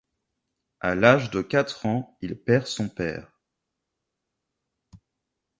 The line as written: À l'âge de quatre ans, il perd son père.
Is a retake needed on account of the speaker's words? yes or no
no